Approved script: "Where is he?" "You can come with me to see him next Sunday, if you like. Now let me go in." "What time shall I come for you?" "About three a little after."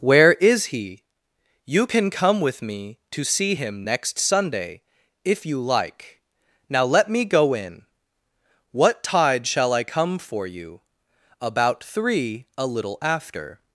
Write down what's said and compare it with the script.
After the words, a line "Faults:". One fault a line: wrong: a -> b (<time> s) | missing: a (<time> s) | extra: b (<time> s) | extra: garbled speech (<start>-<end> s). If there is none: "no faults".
"Where is he?" "You can come with me to see him next Sunday, if you like. Now let me go in." "What tide shall I come for you?" "About three a little after."
Faults:
wrong: time -> tide (9.0 s)